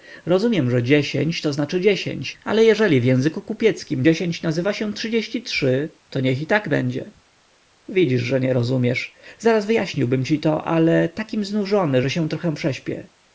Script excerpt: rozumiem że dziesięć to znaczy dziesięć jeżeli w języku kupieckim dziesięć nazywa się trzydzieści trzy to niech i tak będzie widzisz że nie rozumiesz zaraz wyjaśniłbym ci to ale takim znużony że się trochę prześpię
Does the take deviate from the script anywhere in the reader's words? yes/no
yes